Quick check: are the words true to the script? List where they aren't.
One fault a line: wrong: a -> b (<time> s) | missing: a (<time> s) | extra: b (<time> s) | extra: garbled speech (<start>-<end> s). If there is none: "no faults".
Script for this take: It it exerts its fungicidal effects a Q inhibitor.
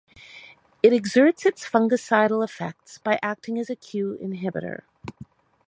missing: it (0.9 s)
extra: by acting as (3.0 s)